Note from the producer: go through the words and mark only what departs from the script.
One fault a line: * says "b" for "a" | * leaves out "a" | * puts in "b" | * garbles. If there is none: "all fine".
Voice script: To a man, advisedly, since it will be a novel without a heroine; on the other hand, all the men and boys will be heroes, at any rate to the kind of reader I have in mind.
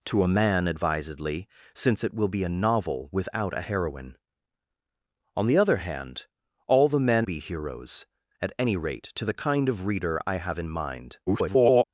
* leaves out "and boys will"
* garbles